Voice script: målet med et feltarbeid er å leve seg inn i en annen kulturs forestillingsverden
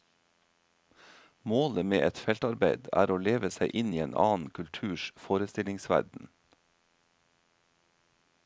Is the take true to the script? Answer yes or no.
yes